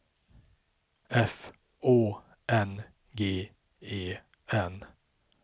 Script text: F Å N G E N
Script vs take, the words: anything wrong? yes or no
no